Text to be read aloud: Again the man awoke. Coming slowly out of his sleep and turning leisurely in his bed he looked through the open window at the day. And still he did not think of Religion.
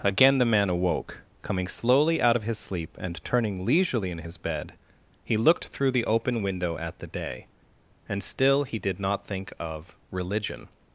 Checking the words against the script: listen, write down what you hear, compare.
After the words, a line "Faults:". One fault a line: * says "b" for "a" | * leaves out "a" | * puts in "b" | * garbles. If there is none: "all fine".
Again the man awoke. Coming slowly out of his sleep and turning leisurely in his bed he looked through the open window at the day. And still he did not think of Religion.
Faults:
all fine